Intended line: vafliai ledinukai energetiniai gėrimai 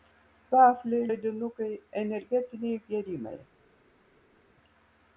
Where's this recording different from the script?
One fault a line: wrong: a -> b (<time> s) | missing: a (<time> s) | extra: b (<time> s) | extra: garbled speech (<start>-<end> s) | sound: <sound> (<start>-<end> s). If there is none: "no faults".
no faults